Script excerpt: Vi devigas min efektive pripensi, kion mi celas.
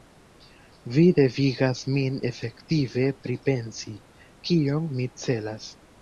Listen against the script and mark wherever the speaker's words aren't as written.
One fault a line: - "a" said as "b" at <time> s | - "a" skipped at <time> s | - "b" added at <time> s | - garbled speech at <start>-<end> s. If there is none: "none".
none